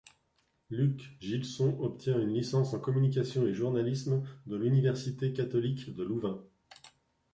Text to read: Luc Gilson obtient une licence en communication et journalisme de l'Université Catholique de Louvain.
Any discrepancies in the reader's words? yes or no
no